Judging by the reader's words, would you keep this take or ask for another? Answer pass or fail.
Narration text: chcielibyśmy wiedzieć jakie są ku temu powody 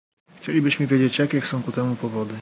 pass